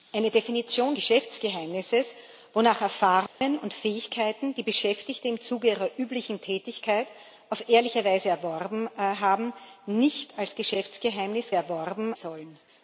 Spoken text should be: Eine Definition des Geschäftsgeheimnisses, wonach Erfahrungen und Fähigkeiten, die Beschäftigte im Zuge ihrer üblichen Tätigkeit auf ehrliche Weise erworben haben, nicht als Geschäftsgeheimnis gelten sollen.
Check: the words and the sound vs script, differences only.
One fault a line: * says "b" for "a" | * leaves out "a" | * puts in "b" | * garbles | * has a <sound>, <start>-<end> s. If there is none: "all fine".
* leaves out "des"
* has a dropout, 3.3-3.4 s
* says "erworben" for "gelten"